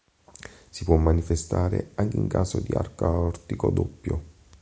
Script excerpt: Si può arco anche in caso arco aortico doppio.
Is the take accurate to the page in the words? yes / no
no